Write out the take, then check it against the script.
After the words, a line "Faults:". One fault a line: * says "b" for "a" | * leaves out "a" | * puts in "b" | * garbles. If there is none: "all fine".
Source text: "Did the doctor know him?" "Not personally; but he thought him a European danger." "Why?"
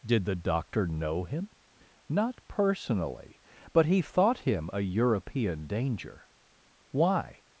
"Did the doctor know him?" "Not personally; but he thought him a European danger." "Why?"
Faults:
all fine